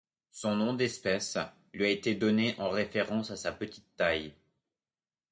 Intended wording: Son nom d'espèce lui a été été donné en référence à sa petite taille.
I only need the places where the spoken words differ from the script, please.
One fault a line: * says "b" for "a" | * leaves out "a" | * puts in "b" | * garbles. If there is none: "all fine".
* leaves out "été"